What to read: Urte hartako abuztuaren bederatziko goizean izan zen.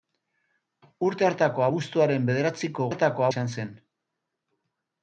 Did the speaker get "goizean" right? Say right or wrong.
wrong